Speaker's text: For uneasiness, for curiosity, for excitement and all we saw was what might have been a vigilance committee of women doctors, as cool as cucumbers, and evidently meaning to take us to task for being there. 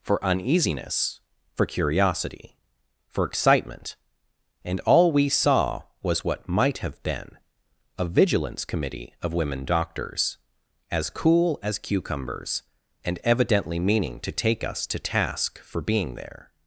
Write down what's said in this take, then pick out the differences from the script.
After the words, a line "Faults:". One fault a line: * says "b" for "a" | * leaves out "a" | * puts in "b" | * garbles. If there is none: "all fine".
For uneasiness, for curiosity, for excitement and all we saw was what might have been a vigilance committee of women doctors, as cool as cucumbers, and evidently meaning to take us to task for being there.
Faults:
all fine